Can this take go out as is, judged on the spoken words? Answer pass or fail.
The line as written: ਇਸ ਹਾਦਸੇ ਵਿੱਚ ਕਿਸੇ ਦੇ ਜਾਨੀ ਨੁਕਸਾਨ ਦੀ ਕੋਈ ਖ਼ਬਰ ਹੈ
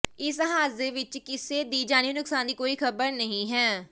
fail